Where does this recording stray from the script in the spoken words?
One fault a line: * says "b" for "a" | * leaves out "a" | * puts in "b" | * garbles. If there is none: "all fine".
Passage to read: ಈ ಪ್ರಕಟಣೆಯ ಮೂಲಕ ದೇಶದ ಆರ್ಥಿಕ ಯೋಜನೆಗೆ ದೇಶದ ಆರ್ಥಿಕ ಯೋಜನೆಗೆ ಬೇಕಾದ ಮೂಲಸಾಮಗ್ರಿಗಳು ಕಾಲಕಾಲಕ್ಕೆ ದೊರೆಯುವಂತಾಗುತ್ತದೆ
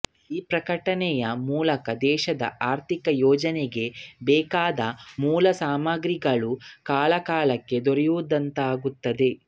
* leaves out "ದೇಶದ ಆರ್ಥಿಕ ಯೋಜನೆಗೆ"